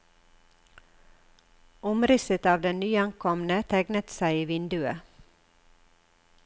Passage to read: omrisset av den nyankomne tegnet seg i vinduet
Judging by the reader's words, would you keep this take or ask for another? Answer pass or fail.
pass